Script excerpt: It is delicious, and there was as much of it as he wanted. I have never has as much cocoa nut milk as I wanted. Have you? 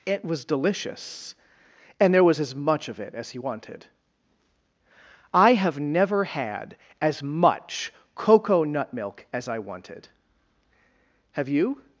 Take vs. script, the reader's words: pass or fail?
fail